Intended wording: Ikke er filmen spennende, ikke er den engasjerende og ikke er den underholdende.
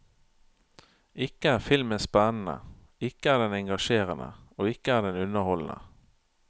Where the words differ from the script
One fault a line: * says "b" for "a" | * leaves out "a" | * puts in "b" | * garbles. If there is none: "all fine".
all fine